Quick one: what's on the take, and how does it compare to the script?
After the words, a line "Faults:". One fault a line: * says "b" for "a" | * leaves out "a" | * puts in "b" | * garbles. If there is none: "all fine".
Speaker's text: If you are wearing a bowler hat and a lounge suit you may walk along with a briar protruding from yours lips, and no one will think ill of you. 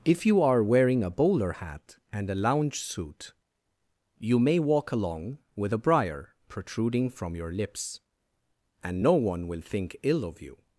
If you are wearing a bowler hat and a lounge suit you may walk along with a briar protruding from your lips, and no one will think ill of you.
Faults:
* says "your" for "yours"